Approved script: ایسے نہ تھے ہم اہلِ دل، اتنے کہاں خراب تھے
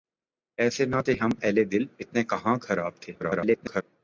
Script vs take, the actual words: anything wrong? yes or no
yes